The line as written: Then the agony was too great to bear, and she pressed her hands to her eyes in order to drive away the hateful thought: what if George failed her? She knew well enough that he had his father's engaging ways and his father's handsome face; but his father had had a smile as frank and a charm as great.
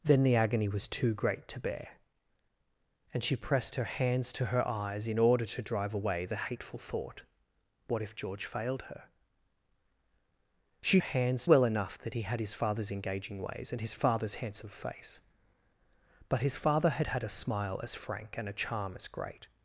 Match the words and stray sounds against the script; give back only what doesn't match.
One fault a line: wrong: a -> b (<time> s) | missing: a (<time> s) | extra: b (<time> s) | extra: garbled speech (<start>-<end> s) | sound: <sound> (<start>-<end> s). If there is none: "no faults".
wrong: knew -> hands (11.0 s)